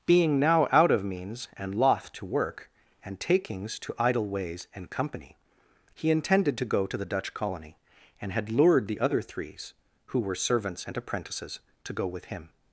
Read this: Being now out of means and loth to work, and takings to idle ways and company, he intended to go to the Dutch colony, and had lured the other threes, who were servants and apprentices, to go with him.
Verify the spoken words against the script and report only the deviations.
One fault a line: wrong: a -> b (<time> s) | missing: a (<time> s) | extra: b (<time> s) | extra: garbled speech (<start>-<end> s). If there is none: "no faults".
no faults